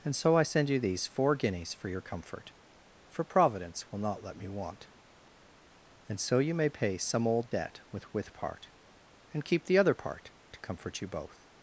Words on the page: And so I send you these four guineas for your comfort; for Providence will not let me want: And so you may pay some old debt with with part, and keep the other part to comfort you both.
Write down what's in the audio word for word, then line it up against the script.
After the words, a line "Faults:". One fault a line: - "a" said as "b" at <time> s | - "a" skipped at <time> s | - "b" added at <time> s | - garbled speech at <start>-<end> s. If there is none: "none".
And so I send you these four guineas for your comfort; for Providence will not let me want: And so you may pay some old debt with with part, and keep the other part to comfort you both.
Faults:
none